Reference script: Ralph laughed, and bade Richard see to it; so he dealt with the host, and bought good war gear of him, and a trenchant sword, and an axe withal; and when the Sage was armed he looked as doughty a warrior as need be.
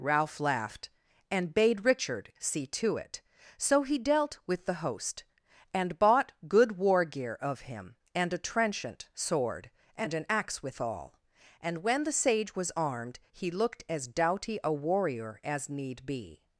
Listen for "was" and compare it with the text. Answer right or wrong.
right